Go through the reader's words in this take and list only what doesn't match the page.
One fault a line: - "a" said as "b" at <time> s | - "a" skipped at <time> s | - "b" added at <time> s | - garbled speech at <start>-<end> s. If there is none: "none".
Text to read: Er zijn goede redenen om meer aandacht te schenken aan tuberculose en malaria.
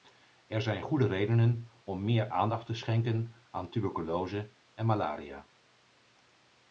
none